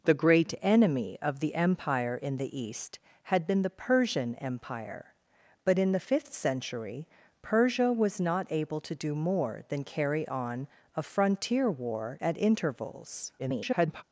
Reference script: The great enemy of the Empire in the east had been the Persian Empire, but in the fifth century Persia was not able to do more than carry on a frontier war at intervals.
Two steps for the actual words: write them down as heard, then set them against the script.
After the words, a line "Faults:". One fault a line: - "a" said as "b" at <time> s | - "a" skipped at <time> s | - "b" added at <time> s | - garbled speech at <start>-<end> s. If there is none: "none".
The great enemy of the Empire in the east had been the Persian Empire, but in the fifth century Persia was not able to do more than carry on a frontier war at intervals. [garbled]
Faults:
- garbled speech at 13.4-14.0 s